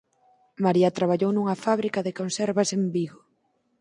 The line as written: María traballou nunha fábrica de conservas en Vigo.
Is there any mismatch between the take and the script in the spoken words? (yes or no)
no